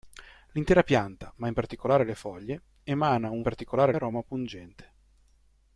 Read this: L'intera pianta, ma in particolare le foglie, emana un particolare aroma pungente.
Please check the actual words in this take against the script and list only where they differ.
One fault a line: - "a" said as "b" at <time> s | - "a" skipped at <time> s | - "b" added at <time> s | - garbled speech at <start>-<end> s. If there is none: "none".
none